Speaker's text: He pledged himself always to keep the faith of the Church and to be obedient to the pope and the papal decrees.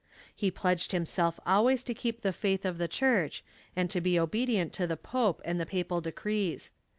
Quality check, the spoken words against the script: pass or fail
pass